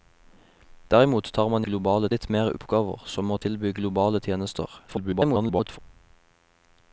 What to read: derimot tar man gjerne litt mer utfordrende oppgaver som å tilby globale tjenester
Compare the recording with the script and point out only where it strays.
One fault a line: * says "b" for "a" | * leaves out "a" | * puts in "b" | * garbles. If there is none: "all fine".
* says "globale" for "gjerne"
* leaves out "utfordrende"
* garbles